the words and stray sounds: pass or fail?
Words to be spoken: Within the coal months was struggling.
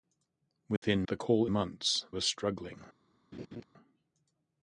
fail